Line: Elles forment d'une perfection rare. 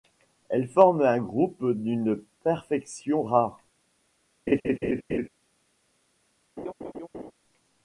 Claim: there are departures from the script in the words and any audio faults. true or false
true